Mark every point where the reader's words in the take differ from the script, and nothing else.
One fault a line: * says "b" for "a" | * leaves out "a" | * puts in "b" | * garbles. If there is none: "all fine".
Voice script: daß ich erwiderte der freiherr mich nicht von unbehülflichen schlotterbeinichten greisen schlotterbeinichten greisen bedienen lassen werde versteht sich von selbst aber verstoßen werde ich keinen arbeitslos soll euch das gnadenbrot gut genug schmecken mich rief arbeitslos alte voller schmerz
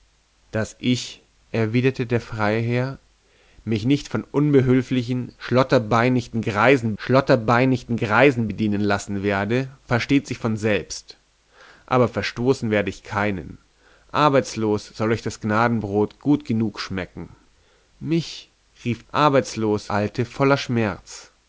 all fine